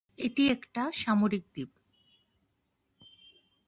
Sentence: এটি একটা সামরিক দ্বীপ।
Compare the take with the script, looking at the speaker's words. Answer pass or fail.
pass